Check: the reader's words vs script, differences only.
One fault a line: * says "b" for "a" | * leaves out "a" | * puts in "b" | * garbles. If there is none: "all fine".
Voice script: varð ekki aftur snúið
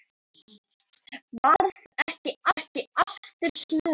* puts in "ekki"